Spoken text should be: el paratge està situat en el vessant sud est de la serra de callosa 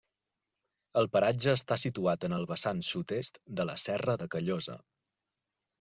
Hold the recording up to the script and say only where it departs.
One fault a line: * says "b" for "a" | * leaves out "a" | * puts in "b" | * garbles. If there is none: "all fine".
all fine